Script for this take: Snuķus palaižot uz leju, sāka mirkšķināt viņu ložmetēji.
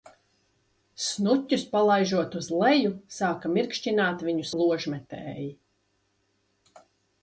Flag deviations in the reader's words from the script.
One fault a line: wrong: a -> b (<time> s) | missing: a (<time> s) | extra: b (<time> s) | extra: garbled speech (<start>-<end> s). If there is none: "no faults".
no faults